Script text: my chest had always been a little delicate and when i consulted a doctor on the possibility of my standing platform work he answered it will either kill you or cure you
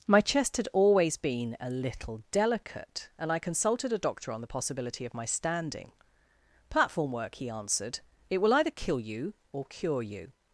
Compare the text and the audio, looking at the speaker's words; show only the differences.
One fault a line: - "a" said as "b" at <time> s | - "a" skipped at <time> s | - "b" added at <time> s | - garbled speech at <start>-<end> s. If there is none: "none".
- "when" skipped at 3.3 s